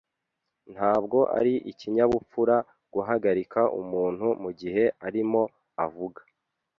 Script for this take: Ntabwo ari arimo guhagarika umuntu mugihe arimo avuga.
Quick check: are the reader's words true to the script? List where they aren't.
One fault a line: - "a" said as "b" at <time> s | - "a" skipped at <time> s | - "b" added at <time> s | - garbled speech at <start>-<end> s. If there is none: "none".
- "arimo" said as "ikinyabupfura" at 1.7 s